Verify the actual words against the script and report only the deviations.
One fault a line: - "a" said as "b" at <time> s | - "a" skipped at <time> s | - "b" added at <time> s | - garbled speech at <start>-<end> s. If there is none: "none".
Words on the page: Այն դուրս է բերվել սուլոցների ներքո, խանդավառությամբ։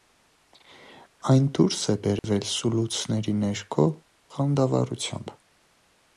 none